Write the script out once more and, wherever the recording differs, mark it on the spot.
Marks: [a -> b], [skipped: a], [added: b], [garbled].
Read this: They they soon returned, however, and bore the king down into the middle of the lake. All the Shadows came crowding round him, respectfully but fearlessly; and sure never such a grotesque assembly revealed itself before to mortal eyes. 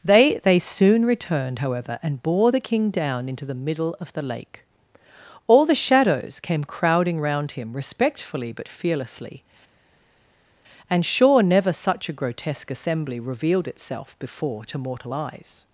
They they soon returned, however, and bore the king down into the middle of the lake. All the Shadows came crowding round him, respectfully but fearlessly; and sure never such a grotesque assembly revealed itself before to mortal eyes.